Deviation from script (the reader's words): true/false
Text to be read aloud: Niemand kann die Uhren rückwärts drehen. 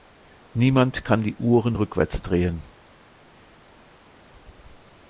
false